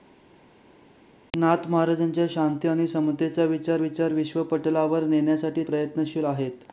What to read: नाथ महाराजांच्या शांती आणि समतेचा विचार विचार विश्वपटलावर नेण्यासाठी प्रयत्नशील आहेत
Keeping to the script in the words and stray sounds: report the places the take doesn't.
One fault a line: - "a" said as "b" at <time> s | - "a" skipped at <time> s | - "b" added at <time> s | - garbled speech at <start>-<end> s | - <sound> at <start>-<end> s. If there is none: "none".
none